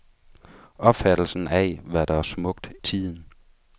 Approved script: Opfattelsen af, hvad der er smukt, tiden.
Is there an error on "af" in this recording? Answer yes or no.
no